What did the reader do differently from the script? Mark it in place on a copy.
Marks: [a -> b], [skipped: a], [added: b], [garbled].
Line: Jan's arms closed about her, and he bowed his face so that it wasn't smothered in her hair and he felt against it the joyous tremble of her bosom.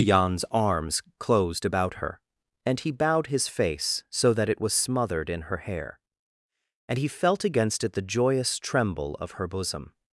Jan's arms closed about her, and he bowed his face so that it [wasn't -> was] smothered in her hair and he felt against it the joyous tremble of her bosom.